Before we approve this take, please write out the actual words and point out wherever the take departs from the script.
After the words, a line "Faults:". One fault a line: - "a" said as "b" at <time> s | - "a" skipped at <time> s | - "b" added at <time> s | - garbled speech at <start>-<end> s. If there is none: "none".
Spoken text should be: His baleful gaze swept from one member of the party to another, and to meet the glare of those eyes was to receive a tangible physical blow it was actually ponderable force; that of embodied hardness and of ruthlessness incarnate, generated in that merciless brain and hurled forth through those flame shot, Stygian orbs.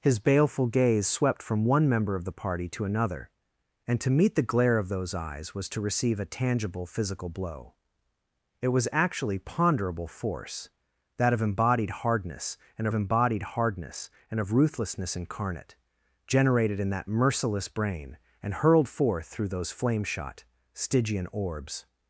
His baleful gaze swept from one member of the party to another, and to meet the glare of those eyes was to receive a tangible physical blow it was actually ponderable force; that of embodied hardness and embodied hardness and of ruthlessness incarnate, generated in that merciless brain and hurled forth through those flame shot, Stygian orbs.
Faults:
- "embodied hardness and" added at 12.9 s